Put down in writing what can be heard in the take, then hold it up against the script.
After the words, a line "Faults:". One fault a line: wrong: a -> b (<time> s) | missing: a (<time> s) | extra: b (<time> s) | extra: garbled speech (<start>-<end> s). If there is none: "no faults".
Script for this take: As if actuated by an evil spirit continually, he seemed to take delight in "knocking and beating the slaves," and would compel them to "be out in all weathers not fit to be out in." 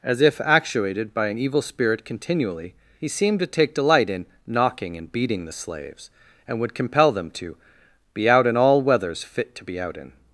As if actuated by an evil spirit continually, he seemed to take delight in "knocking and beating the slaves," and would compel them to "be out in all weathers fit to be out in."
Faults:
missing: not (9.2 s)